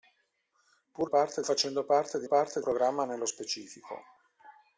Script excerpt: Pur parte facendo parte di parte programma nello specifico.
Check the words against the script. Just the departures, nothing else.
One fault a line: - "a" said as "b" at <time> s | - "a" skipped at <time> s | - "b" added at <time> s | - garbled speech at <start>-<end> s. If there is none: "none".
none